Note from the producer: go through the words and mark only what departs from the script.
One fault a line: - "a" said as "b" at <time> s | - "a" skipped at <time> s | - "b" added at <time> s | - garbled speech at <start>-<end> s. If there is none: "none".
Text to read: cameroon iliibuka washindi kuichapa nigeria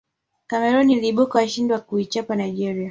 - "kwa" added at 1.7 s